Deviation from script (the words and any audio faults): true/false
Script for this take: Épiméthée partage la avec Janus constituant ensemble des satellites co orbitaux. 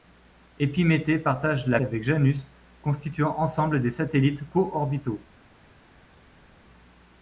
false